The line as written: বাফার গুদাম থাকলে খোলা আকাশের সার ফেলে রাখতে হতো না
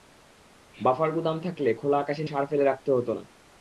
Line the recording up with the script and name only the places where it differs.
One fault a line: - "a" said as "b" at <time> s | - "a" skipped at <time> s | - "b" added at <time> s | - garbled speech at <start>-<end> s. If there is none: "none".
none